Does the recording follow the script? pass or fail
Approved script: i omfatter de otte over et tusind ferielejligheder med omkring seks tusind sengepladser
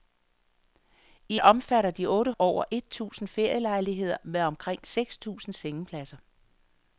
pass